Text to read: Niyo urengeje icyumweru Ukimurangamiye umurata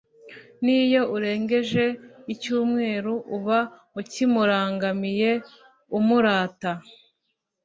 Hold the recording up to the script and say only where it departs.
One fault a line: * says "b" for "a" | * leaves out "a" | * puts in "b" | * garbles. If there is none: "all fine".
* puts in "Uba"